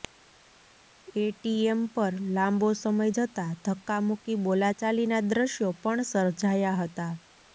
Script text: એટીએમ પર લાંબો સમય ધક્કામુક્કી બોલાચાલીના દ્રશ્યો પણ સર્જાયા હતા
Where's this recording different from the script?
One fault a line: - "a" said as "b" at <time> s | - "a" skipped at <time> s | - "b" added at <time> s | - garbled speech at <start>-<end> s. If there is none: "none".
- "જતા" added at 3.2 s